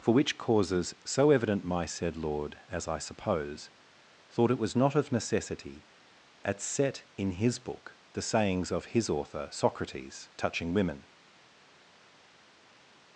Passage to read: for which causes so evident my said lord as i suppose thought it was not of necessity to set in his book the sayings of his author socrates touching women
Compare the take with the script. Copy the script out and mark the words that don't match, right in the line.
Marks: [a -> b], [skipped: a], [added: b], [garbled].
for which causes so evident my said lord as i suppose thought it was not of necessity [to -> at] set in his book the sayings of his author socrates touching women